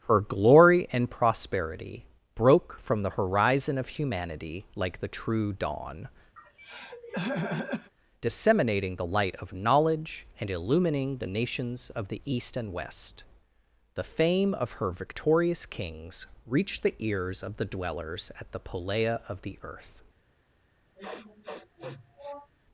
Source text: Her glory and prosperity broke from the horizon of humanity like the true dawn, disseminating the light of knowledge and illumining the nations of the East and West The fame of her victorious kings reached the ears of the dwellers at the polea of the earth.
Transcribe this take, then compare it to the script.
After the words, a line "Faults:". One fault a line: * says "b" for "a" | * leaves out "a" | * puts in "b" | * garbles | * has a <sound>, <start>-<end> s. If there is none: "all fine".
Her glory and prosperity broke from the horizon of humanity like the true dawn, disseminating the light of knowledge and illumining the nations of the East and West The fame of her victorious kings reached the ears of the dwellers at the polea of the earth.
Faults:
* has a throat clearing, 6.4-7.9 s
* has a sniff, 21.0-22.5 s